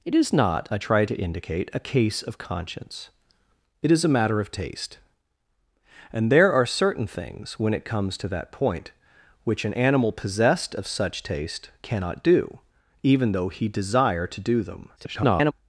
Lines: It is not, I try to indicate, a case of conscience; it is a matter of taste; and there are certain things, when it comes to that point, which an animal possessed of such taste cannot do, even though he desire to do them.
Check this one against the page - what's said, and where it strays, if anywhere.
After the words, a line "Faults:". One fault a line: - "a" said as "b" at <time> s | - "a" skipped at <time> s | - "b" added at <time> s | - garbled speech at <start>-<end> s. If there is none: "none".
It is not, I try to indicate, a case of conscience; it is a matter of taste; and there are certain things, when it comes to that point, which an animal possessed of such taste cannot do, even though he desire to do them. [garbled]
Faults:
- garbled speech at 15.0-15.5 s